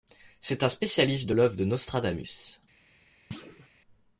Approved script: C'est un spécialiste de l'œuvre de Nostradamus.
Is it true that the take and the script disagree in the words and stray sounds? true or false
true